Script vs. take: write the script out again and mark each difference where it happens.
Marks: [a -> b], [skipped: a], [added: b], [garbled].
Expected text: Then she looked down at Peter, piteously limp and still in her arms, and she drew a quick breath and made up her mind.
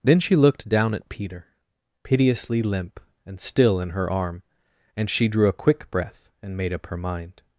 Then she looked down at Peter, piteously limp and still in her [arms, -> arm] and she drew a quick breath and made up her mind.